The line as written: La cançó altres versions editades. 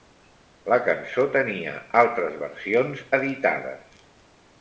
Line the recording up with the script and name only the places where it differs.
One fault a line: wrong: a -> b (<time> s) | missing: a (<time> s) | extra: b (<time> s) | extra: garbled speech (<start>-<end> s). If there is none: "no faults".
extra: tenia (1.4 s)